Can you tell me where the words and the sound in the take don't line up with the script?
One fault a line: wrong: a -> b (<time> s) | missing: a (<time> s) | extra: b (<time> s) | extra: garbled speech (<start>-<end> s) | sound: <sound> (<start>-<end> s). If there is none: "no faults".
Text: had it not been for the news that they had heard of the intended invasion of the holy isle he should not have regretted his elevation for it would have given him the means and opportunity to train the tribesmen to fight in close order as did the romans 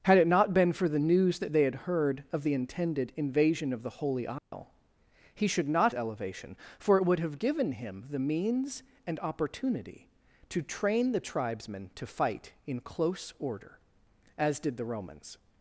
sound: dropout (4.4-4.5 s)
missing: have regretted his (5.9 s)